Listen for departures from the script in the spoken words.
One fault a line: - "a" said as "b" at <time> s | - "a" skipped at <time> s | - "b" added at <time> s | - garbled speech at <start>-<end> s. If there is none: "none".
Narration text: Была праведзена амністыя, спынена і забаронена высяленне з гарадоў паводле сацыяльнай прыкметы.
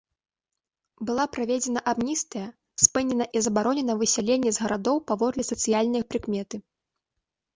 none